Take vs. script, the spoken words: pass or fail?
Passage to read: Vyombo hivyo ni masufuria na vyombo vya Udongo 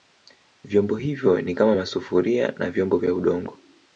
fail